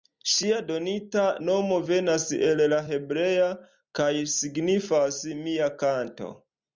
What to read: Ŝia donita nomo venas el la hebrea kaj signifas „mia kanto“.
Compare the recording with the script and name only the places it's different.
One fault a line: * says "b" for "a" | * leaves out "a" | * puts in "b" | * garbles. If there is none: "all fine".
all fine